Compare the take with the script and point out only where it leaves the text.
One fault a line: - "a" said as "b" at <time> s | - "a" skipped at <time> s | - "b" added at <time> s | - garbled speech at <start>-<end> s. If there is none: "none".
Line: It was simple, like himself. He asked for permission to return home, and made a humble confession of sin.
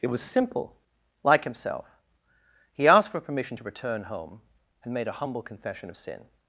none